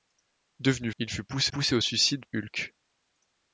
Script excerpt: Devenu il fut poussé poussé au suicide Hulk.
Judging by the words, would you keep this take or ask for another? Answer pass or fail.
pass